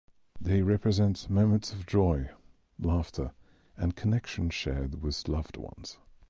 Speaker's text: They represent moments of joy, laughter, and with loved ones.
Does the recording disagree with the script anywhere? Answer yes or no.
yes